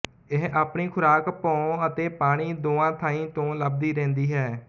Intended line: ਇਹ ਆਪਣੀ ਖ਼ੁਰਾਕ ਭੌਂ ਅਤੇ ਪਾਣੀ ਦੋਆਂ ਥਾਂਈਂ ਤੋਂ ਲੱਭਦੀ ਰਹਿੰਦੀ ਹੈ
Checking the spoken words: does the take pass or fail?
pass